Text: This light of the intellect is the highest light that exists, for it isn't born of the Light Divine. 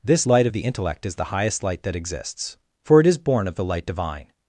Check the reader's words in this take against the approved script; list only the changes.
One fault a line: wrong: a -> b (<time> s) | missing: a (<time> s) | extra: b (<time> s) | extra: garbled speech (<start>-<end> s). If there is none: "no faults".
wrong: isn't -> is (3.1 s)